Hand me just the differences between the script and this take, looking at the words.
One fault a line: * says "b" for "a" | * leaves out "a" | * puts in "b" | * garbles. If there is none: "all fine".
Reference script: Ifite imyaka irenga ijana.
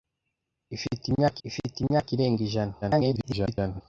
* puts in "ifite imyaka"
* garbles